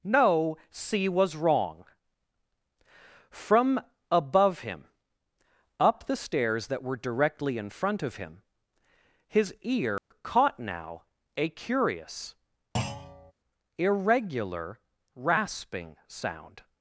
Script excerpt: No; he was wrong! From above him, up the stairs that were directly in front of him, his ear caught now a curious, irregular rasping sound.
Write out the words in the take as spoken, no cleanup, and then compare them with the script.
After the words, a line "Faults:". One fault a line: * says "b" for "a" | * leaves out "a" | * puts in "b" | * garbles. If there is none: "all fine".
No; c was wrong! From above him, up the stairs that were directly in front of him, his ear caught now a curious, irregular rasping sound.
Faults:
* says "c" for "he"